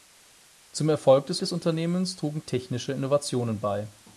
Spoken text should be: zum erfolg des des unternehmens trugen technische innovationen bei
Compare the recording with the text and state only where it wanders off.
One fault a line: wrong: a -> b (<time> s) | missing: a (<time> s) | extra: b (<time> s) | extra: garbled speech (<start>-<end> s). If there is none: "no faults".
no faults